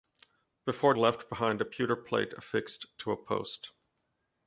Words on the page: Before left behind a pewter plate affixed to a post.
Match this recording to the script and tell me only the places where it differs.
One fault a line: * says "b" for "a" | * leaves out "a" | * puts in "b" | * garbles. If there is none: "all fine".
all fine